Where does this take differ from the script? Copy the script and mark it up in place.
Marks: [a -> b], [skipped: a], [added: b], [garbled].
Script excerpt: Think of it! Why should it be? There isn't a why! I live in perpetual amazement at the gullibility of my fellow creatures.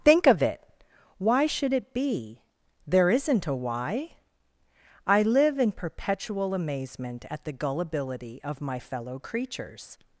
Think of it! Why should it be? There isn't a why! I live in perpetual amazement at the gullibility of my fellow creatures.